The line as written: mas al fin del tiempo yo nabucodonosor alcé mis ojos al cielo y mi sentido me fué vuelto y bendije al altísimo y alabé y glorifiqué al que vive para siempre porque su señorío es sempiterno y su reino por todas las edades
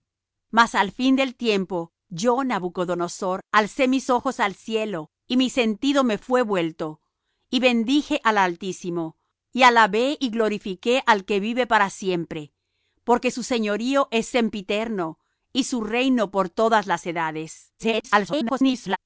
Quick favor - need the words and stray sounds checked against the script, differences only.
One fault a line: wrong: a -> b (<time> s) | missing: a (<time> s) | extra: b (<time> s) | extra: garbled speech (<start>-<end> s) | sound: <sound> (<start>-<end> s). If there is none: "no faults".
extra: garbled speech (17.8-19.0 s)